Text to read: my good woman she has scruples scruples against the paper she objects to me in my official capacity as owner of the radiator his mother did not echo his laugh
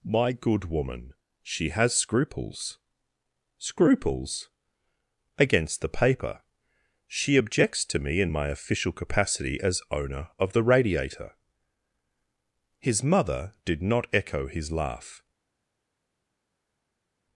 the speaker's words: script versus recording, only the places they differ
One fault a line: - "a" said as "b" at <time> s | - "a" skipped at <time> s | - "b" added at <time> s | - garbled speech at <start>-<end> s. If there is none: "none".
none